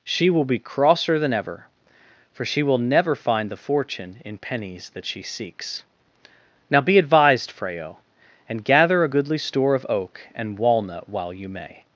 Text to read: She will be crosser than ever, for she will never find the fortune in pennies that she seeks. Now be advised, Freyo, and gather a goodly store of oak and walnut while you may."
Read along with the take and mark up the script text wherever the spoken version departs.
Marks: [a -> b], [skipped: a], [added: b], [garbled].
She will be crosser than ever, for she will never find the fortune in pennies that she seeks. Now be advised, Freyo, and gather a goodly store of oak and walnut while you may."